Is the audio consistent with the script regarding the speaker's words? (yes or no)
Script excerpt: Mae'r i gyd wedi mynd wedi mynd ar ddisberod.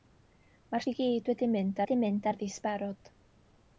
yes